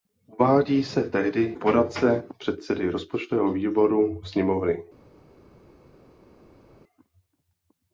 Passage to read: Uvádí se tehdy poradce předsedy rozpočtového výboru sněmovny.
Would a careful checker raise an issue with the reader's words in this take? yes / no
no